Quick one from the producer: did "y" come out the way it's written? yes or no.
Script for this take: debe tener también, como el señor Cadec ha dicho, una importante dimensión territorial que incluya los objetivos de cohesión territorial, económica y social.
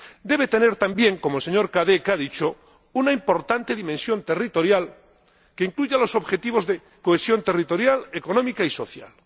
yes